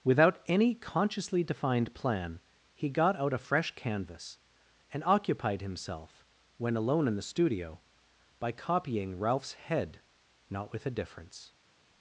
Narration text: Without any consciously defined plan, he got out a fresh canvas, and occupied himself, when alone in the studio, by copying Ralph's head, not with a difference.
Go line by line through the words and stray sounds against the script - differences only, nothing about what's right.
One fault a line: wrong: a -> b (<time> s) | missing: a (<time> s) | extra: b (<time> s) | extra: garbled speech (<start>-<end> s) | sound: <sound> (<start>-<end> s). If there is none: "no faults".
no faults